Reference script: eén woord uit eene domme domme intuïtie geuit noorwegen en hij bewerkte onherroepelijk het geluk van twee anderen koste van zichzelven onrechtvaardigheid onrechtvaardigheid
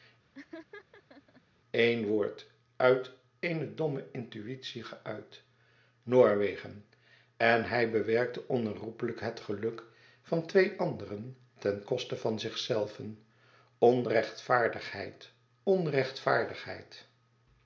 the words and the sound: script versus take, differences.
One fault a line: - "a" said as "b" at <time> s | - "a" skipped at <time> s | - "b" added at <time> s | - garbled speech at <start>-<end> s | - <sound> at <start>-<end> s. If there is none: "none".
- laugh at 0.3-1.4 s
- "domme" skipped at 4.1 s
- "ten" added at 11.6 s